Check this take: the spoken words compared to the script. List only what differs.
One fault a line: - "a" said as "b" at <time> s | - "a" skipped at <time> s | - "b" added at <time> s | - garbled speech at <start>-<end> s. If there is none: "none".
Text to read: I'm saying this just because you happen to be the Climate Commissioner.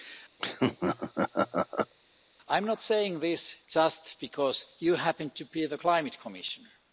- "not" added at 2.7 s